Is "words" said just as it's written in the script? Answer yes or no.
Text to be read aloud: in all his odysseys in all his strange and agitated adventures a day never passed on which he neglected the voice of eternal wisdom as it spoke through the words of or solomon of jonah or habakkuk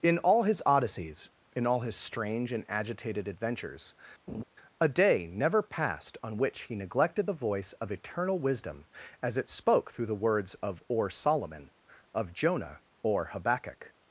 yes